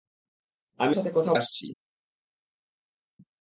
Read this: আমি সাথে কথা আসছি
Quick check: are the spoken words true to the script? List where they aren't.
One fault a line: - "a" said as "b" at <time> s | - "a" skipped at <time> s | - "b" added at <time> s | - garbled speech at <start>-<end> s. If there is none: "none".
none